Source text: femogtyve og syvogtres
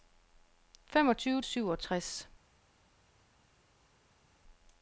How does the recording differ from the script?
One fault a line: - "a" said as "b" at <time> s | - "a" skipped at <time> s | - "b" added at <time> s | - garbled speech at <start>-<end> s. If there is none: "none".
none